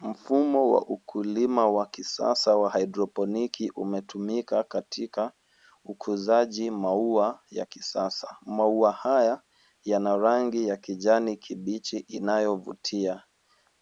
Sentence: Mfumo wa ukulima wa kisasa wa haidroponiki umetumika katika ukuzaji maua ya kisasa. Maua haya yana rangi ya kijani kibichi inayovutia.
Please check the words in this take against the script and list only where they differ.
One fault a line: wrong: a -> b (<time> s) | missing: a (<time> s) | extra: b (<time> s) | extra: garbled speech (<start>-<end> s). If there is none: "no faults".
no faults